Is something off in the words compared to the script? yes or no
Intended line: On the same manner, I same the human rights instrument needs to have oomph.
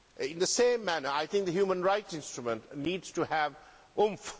yes